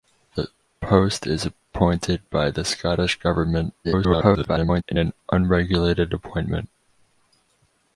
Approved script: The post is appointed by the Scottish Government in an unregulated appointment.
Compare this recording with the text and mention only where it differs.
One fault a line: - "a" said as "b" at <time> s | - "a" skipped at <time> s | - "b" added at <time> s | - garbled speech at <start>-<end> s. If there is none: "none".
- garbled speech at 3.8-4.8 s